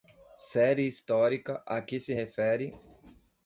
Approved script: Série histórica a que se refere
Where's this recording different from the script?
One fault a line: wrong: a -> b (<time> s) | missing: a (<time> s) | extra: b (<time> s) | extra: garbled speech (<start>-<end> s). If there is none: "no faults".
no faults